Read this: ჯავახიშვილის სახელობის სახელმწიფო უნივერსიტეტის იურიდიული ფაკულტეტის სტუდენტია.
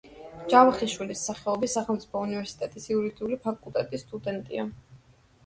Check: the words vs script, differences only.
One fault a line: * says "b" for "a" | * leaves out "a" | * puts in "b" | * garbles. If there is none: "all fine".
all fine